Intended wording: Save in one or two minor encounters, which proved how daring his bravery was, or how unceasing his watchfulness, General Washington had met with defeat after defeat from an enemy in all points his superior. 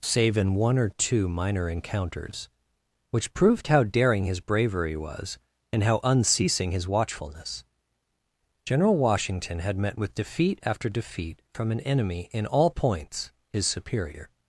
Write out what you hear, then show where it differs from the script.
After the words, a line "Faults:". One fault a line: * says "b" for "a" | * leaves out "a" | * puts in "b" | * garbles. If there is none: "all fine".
Save in one or two minor encounters, which proved how daring his bravery was, and how unceasing his watchfulness, General Washington had met with defeat after defeat from an enemy in all points his superior.
Faults:
* says "and" for "or"